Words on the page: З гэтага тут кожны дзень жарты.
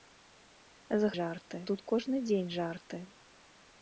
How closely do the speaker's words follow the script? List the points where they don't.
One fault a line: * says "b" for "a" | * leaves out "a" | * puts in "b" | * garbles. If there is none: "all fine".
* says "жарты" for "гэтага"